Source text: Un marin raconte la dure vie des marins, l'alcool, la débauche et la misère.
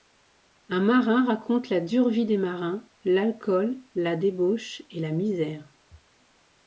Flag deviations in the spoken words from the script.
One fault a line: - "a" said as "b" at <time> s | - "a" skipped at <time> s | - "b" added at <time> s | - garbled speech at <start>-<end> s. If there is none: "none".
none